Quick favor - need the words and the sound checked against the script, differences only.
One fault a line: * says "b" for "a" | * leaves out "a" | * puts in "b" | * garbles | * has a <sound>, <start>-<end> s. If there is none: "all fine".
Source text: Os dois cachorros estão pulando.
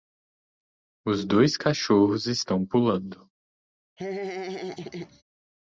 * has a laugh, 4.0-5.2 s